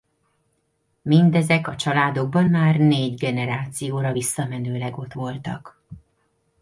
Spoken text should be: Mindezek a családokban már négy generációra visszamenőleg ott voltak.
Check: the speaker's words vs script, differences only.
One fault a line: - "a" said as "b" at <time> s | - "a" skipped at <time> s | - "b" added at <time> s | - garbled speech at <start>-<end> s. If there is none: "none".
none